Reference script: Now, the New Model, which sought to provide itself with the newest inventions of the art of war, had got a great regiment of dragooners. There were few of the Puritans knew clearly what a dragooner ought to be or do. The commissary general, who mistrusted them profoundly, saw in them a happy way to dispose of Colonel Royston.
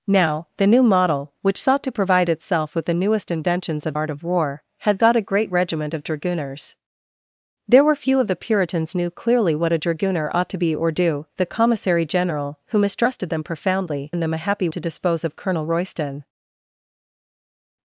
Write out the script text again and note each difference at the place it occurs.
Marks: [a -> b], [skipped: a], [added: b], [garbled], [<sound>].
Now, the New Model, which sought to provide itself with the newest inventions of [skipped: the] art of war, had got a great regiment of dragooners. There were few of the Puritans knew clearly what a dragooner ought to be or do. The commissary general, who mistrusted them profoundly, [skipped: saw] in them a happy [skipped: way] to dispose of Colonel Royston.